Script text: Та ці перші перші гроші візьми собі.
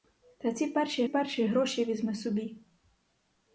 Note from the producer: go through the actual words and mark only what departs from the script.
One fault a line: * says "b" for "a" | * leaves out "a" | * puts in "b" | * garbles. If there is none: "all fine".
all fine